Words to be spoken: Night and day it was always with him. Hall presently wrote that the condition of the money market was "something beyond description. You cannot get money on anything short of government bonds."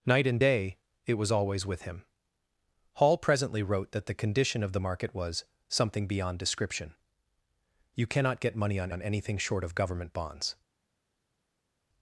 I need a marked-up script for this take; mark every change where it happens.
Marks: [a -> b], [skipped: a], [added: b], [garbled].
Night and day it was always with him. Hall presently wrote that the condition of the [skipped: money] market was "something beyond description. You cannot get money on [added: on] anything short of government bonds."